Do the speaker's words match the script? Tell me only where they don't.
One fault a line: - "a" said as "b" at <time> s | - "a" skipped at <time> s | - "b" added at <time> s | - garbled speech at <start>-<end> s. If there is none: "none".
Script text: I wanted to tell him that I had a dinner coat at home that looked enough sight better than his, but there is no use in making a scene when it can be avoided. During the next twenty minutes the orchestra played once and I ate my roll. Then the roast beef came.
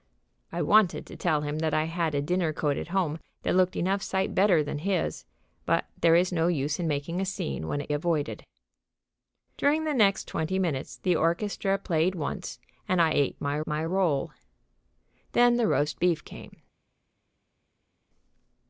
- "can be" skipped at 7.9 s
- "my" added at 13.6 s